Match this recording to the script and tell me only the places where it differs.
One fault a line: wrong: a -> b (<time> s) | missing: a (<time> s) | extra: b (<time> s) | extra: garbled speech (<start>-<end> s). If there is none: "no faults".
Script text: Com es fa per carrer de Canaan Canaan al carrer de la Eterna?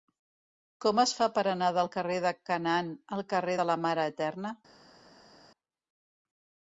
extra: anar del (1.5 s)
missing: Canaan (3.0 s)
extra: Mare (3.9 s)